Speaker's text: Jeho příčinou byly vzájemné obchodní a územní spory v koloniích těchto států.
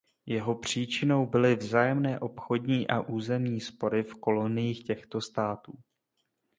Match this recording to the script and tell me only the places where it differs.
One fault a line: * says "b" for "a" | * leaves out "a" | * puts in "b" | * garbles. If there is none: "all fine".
all fine